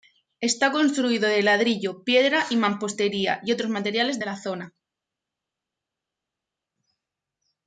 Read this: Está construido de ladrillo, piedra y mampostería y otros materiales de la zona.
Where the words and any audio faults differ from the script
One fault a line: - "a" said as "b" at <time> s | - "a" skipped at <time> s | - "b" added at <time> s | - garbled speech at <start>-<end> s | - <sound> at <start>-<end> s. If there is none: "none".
none